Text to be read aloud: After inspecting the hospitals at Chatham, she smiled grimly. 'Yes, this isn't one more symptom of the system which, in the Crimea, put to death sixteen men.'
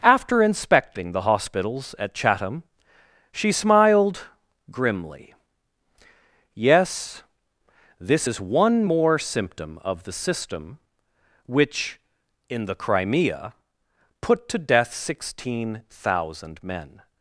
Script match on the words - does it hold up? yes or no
no